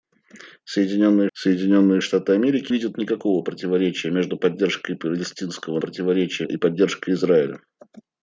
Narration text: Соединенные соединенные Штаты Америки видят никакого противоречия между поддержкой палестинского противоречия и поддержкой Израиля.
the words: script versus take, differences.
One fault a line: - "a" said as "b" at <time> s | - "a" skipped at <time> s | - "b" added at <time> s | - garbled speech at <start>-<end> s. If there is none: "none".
none